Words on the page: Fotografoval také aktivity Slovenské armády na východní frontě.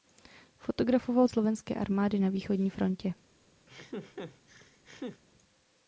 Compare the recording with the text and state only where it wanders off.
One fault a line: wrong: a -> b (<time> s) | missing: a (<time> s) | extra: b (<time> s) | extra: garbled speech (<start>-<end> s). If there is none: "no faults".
missing: také aktivity (1.3 s)